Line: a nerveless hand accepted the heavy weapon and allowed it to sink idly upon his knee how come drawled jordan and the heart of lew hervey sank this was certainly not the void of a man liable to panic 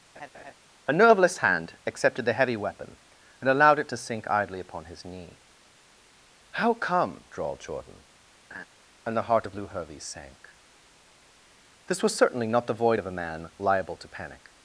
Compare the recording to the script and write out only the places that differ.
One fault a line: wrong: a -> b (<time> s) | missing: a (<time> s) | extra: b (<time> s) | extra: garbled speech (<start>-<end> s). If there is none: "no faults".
no faults